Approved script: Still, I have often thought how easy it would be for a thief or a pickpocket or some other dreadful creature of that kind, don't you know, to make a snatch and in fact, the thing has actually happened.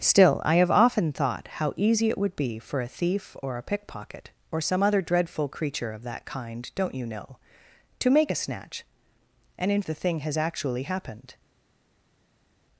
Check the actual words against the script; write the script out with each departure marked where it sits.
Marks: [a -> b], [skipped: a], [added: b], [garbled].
Still, I have often thought how easy it would be for a thief or a pickpocket or some other dreadful creature of that kind, don't you know, to make a snatch and in [skipped: fact,] the thing has actually happened.